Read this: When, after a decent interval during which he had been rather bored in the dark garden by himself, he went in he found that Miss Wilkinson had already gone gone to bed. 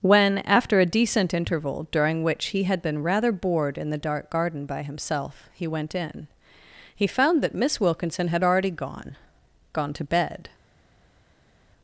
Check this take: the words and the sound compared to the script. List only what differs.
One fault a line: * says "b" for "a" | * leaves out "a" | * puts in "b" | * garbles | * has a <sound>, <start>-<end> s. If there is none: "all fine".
all fine